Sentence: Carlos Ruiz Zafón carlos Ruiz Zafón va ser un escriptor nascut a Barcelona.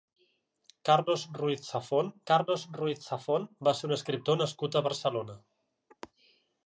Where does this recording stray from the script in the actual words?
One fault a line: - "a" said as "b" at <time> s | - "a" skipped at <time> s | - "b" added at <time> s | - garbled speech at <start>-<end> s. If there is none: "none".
none